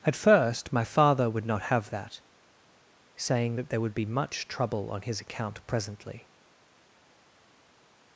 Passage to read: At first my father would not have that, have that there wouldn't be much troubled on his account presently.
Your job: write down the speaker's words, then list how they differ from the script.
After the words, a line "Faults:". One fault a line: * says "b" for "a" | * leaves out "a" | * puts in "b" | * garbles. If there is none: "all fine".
At first my father would not have that, saying that there would be much trouble on his account presently.
Faults:
* says "saying" for "have"
* says "would" for "wouldn't"
* says "trouble" for "troubled"